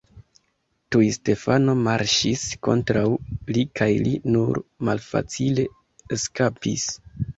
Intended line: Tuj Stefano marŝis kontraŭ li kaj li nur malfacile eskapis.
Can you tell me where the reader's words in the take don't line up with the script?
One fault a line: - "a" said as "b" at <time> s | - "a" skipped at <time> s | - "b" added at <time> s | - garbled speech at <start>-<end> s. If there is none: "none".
none